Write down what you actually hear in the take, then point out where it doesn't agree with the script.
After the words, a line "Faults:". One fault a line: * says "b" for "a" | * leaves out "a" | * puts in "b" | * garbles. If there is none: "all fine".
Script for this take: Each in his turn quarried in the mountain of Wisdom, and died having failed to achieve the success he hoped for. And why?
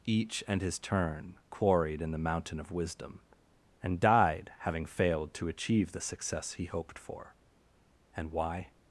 Each and his turn quarried in the mountain of Wisdom, and died having failed to achieve the success he hoped for. And why?
Faults:
* says "and" for "in"